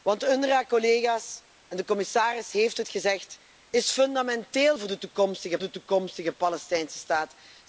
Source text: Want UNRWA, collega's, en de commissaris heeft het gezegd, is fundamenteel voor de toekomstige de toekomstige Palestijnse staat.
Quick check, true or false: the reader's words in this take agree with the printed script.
true